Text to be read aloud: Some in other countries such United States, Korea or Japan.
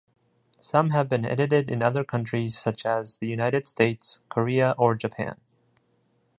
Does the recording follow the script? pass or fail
fail